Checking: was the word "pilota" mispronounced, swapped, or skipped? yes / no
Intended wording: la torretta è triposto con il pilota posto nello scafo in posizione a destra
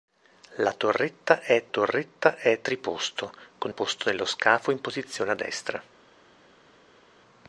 yes